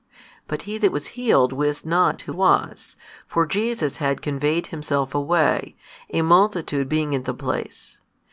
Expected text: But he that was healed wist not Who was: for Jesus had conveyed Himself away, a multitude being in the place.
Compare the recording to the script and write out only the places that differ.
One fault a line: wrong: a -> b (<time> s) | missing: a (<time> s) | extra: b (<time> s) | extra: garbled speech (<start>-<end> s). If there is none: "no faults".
no faults